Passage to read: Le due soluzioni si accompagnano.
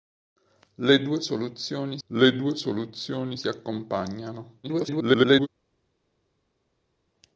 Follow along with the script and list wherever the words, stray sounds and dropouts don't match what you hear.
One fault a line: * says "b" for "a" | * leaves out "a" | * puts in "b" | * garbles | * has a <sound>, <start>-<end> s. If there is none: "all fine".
* puts in "le due soluzioni"
* garbles